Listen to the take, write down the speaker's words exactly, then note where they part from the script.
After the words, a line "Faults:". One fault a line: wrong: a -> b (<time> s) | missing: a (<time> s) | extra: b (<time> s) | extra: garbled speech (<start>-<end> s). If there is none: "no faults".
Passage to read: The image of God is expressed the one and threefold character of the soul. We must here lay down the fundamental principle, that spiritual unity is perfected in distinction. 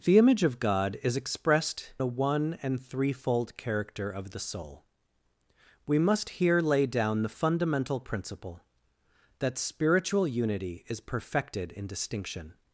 The image of God is expressed the one and threefold character of the soul. We must here lay down the fundamental principle, that spiritual unity is perfected in distinction.
Faults:
no faults